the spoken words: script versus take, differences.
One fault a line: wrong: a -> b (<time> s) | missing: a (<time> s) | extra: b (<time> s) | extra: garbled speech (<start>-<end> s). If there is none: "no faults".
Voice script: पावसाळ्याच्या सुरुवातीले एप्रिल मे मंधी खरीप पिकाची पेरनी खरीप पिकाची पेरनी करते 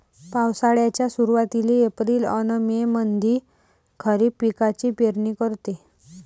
extra: अन (2.3 s)
missing: खरीप पिकाची पेरनी (5.3 s)